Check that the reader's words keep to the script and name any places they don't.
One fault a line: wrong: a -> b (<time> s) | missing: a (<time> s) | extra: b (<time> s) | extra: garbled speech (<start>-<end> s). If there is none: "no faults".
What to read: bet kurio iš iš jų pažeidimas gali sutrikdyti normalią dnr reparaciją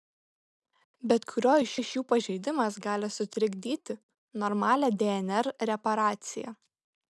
no faults